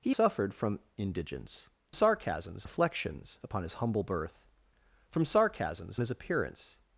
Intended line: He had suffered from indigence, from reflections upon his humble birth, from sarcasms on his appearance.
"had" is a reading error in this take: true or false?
true